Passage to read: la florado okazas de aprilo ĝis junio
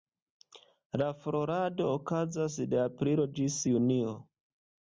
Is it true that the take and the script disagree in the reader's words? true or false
false